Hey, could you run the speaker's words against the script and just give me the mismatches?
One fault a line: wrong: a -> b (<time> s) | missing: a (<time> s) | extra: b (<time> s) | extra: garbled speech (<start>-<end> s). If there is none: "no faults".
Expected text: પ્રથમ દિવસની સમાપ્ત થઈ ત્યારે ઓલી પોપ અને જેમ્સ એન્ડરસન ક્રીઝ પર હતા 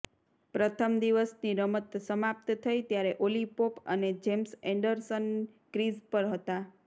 extra: રમત (1.6 s)